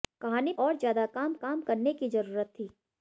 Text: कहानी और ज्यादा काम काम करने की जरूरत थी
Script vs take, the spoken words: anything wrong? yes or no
no